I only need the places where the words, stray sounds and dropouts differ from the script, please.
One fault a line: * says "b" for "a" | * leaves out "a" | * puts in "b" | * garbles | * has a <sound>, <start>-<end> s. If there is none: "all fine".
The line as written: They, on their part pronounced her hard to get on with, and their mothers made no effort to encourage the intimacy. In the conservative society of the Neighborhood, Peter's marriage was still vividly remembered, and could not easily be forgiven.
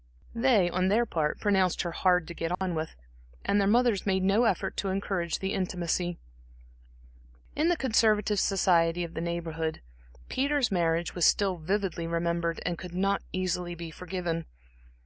* has a dropout, 2.5-2.6 s